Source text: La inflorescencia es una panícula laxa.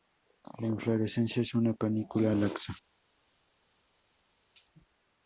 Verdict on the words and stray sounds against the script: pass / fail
pass